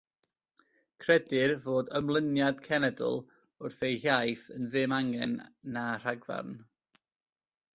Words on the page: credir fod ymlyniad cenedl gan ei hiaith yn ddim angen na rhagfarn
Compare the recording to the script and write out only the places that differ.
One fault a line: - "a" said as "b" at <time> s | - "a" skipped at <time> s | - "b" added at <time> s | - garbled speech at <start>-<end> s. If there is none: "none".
- "gan" said as "wrth" at 3.7 s